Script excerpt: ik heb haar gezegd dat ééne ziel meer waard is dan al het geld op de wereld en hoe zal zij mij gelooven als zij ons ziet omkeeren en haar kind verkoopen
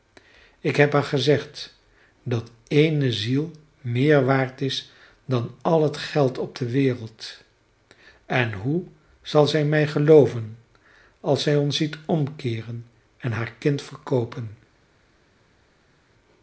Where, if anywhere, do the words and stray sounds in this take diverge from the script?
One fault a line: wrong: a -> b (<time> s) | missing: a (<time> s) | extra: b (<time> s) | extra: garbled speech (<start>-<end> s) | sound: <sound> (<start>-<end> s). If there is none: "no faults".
no faults